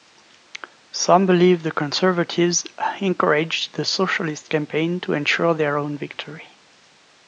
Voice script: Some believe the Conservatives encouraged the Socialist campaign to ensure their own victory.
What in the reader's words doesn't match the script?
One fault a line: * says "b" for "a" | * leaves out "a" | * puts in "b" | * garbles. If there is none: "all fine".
all fine